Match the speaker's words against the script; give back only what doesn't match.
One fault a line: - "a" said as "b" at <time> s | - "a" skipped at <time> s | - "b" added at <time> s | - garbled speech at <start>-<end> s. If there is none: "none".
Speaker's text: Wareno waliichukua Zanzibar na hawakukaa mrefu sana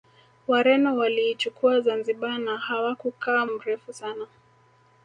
none